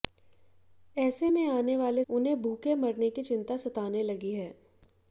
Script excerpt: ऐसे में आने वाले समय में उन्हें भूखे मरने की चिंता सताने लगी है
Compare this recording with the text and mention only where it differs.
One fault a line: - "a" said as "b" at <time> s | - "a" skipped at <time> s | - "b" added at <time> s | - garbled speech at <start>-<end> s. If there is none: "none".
- "समय में" skipped at 2.0 s